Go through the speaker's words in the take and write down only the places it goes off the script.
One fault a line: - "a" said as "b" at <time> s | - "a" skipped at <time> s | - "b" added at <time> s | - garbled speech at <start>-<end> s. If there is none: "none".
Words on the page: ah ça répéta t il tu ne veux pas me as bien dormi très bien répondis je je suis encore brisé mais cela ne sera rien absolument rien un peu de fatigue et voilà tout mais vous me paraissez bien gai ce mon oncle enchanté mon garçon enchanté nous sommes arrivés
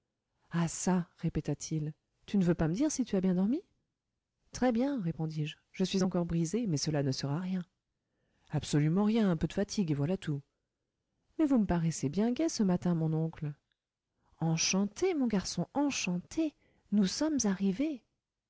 - "dire si tu" added at 2.7 s
- "matin" added at 12.6 s